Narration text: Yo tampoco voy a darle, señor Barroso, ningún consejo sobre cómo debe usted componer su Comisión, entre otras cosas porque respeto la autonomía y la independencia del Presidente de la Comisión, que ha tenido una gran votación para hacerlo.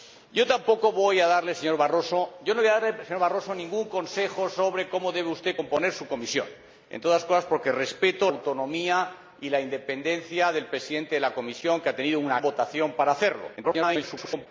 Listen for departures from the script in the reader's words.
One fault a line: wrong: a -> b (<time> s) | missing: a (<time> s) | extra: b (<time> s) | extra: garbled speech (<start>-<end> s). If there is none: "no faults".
missing: la (8.3 s)
missing: gran (12.4 s)
extra: garbled speech (13.6-14.5 s)